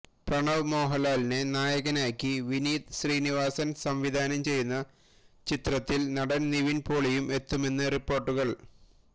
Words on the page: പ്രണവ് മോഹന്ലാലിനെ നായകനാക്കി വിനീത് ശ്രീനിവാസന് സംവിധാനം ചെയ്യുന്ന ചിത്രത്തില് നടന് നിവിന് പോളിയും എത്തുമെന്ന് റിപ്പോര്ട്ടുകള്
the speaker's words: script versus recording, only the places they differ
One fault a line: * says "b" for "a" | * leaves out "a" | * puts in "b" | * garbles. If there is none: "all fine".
all fine